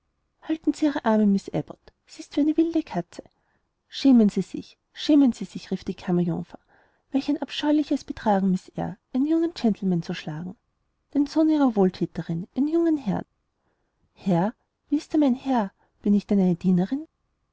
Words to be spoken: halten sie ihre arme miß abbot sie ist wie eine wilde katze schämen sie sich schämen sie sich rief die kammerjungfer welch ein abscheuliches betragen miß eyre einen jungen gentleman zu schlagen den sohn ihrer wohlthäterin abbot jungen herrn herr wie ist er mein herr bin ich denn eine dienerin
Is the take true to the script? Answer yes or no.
no